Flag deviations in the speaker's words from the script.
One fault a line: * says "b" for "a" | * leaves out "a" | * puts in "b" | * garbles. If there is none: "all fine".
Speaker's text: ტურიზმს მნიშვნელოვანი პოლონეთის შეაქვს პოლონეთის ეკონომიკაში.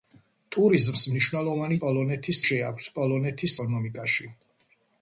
all fine